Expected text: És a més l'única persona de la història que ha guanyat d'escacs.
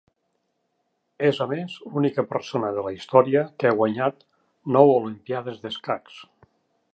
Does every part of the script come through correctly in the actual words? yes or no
no